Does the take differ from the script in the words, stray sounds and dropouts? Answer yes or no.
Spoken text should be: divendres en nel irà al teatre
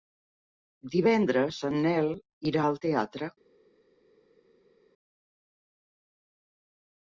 no